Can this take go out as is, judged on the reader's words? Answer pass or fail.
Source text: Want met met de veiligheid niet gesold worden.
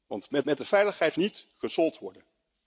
pass